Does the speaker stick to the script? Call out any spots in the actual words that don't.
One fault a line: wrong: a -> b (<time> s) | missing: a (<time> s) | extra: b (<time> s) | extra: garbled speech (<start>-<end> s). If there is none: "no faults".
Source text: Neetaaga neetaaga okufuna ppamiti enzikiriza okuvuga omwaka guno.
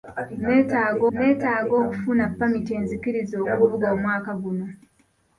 no faults